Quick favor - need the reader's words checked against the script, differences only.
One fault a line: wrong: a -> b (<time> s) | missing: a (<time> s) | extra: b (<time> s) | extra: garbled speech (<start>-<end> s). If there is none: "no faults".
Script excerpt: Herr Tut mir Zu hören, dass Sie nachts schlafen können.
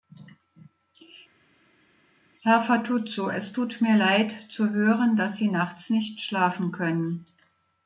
extra: Fatuzzo es (2.6 s)
extra: Leid (4.0 s)
extra: nicht (5.9 s)